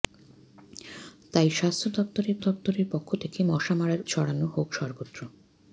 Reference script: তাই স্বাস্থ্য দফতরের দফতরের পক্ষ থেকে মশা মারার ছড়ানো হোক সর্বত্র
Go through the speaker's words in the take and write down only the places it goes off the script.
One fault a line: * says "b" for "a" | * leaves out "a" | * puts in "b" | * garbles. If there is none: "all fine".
all fine